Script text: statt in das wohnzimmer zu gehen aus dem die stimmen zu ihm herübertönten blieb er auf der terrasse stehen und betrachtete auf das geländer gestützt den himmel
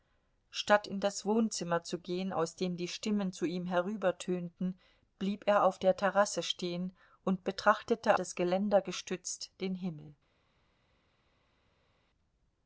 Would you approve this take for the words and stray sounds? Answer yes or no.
no